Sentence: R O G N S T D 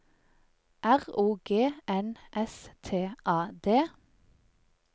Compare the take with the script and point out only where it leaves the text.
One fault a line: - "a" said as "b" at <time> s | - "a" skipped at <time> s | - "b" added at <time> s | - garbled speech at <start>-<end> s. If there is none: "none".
- "A" added at 3.2 s